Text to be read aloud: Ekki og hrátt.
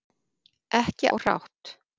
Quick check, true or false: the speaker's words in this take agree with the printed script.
true